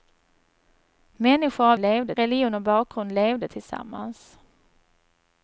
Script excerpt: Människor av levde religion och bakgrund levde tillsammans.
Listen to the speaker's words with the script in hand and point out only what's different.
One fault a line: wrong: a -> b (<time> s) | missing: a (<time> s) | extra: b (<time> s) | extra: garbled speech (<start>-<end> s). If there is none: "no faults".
no faults